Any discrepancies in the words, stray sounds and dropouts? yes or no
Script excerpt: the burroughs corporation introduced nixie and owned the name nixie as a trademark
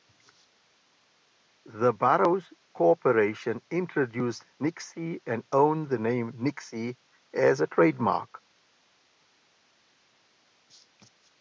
no